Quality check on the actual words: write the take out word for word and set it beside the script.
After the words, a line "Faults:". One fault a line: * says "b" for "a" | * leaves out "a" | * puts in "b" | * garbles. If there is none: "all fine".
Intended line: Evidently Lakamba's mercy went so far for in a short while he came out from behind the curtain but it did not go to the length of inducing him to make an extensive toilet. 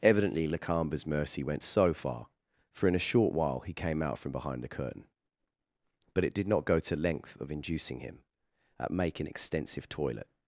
Evidently Lakamba's mercy went so far for in a short while he came out from behind the curtain but it did not go to length of inducing him at make an extensive toilet.
Faults:
* leaves out "the"
* says "at" for "to"